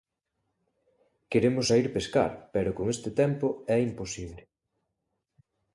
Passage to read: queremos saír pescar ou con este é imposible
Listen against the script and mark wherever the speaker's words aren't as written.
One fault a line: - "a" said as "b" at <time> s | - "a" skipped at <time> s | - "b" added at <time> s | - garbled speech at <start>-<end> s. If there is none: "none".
- "ou" said as "pero" at 2.5 s
- "tempo" added at 3.2 s